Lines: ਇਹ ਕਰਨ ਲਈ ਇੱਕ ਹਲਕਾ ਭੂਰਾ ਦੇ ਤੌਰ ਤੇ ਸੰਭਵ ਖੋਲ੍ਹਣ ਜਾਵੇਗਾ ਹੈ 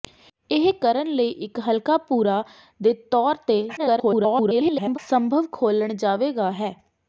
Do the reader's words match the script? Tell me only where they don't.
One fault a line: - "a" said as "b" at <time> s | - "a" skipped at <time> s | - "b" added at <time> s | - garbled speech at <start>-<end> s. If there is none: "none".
- garbled speech at 3.8-5.0 s